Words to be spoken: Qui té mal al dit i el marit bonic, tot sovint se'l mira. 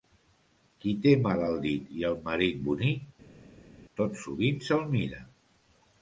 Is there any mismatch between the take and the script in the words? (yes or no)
no